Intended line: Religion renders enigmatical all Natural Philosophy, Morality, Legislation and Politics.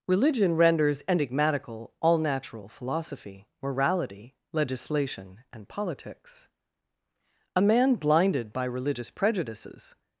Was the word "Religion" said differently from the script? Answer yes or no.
no